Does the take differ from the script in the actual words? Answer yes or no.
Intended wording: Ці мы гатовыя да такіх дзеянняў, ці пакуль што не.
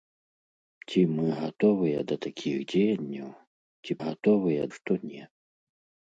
yes